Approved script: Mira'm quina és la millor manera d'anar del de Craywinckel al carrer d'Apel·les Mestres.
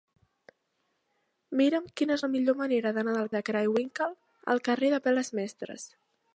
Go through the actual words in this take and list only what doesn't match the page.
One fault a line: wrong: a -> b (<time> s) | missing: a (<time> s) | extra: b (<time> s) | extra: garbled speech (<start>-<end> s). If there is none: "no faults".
no faults